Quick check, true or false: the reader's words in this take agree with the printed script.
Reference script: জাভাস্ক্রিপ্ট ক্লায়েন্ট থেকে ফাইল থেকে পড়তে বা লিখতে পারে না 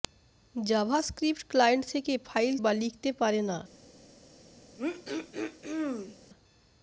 false